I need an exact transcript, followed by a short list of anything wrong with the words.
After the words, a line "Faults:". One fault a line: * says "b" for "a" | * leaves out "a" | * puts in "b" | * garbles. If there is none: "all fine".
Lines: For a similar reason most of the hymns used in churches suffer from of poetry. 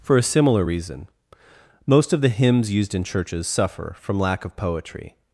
For a similar reason most of the hymns used in churches suffer from lack of poetry.
Faults:
* puts in "lack"